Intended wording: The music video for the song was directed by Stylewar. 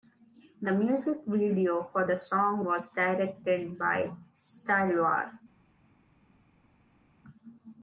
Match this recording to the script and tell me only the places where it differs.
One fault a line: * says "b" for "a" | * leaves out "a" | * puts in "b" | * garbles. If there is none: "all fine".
all fine